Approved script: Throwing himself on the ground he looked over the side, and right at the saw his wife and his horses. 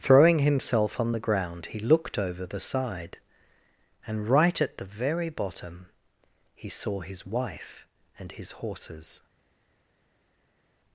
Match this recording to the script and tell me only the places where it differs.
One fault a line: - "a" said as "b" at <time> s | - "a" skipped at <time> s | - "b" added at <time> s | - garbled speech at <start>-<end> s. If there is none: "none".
- "very bottom he" added at 4.8 s